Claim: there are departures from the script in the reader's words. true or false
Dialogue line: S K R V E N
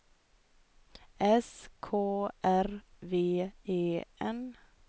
false